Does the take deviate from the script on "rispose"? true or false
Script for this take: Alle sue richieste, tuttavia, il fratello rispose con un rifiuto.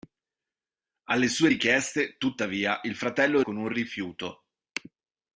true